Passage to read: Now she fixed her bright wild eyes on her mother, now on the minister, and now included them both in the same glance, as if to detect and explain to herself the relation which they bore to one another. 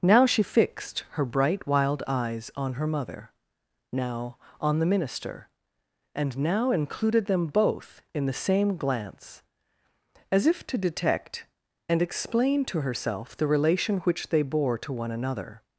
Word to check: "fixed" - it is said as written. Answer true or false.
true